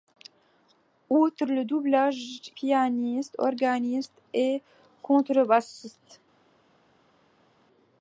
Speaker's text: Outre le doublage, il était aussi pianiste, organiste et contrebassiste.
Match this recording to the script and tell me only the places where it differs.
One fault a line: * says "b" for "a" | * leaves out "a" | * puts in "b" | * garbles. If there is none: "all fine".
* leaves out "il était aussi"